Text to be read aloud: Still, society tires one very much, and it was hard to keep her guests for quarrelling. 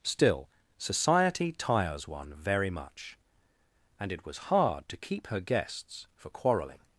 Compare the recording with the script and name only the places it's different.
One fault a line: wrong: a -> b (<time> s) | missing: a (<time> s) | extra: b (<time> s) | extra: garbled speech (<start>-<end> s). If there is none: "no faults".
no faults